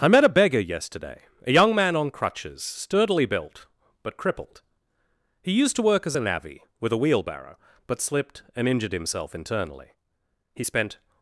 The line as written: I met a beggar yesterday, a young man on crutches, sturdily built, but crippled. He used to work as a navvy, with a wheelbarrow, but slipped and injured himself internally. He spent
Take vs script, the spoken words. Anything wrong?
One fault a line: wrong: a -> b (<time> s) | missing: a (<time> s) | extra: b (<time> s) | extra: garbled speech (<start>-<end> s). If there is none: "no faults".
no faults